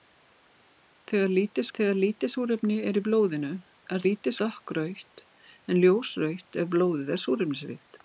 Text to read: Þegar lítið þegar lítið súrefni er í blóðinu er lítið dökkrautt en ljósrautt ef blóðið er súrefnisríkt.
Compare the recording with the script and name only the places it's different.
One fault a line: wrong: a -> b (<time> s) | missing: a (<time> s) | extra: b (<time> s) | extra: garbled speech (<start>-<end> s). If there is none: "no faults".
no faults